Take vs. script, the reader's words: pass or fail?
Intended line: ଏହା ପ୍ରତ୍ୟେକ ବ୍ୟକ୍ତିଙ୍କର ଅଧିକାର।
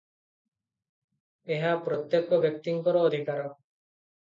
pass